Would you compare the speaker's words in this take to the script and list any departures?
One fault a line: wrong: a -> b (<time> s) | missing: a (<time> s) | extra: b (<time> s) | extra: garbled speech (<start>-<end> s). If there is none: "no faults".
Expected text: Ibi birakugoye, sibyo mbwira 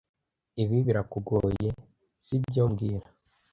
no faults